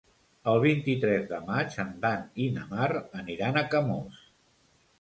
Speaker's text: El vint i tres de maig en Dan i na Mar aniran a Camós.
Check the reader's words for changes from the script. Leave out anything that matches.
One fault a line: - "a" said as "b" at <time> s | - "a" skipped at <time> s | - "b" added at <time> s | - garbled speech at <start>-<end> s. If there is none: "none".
none